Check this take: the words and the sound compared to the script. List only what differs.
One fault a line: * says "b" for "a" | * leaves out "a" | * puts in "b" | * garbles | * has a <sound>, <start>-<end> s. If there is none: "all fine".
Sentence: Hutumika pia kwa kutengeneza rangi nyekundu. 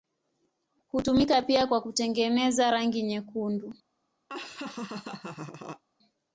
* has a laugh, 4.3-5.8 s